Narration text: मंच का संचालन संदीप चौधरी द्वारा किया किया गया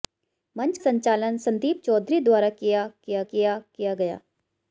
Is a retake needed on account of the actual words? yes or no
yes